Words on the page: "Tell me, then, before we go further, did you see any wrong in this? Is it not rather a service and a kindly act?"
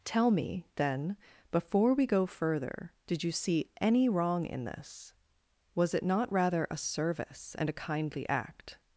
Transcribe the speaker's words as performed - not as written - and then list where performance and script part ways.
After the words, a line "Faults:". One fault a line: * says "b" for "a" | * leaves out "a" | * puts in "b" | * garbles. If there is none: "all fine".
"Tell me, then, before we go further, did you see any wrong in this? Was it not rather a service and a kindly act?"
Faults:
* says "Was" for "Is"